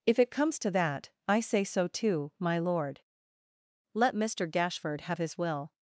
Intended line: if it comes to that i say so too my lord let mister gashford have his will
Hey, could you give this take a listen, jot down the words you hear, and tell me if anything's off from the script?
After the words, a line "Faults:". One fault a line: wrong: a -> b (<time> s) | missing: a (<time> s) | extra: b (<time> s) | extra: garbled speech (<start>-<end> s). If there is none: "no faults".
if it comes to that i say so too my lord let mister gashford have his will
Faults:
no faults